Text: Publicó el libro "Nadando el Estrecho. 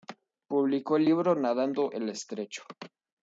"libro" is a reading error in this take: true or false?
false